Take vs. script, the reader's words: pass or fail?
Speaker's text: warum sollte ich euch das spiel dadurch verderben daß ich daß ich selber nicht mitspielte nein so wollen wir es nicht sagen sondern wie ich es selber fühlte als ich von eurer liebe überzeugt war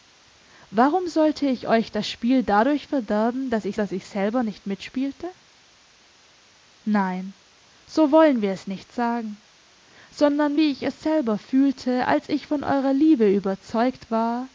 pass